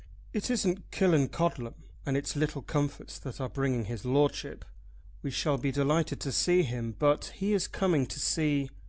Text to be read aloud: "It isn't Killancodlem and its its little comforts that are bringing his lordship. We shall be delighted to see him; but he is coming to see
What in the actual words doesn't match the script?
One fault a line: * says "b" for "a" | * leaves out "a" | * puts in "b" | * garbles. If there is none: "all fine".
* leaves out "its"